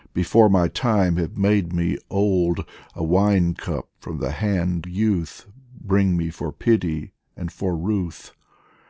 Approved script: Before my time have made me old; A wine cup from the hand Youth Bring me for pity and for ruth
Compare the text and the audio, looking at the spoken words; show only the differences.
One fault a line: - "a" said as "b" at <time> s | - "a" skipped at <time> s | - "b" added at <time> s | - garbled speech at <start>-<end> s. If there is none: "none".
none